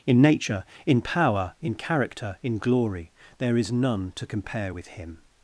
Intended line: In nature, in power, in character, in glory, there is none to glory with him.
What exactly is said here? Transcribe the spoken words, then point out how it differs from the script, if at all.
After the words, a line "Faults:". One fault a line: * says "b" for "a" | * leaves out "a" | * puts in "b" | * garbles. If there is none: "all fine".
In nature, in power, in character, in glory, there is none to compare with him.
Faults:
* says "compare" for "glory"